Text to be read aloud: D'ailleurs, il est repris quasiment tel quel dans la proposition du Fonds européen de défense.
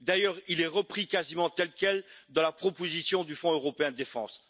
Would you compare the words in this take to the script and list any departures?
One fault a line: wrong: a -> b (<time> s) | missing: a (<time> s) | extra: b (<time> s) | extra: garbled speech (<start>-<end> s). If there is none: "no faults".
no faults